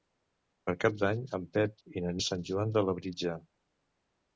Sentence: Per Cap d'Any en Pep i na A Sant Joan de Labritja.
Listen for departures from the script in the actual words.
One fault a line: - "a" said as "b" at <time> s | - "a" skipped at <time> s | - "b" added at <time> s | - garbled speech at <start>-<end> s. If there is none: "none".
none